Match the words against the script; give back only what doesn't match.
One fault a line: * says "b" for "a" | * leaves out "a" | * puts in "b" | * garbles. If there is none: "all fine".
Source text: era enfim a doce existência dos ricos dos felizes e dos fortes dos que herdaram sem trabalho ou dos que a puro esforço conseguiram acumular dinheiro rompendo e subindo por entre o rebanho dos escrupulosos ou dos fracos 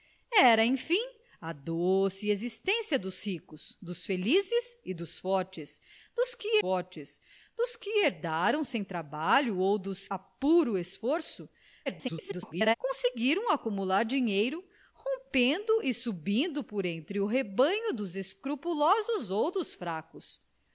* puts in "fortes dos que"
* leaves out "que"
* garbles